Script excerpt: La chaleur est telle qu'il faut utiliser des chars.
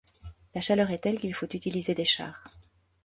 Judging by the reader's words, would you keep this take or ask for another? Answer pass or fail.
pass